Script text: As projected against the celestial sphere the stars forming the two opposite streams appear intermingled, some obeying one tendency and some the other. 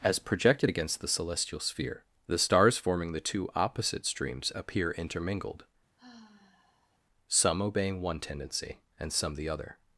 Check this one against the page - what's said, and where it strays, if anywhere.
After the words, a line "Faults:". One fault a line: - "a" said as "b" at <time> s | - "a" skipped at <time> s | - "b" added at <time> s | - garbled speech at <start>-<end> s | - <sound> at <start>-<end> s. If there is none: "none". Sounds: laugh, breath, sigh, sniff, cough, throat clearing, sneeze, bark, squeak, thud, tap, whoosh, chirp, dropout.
As projected against the celestial sphere the stars forming the two opposite streams appear intermingled, some obeying one tendency and some the other.
Faults:
- sigh at 6.0-7.0 s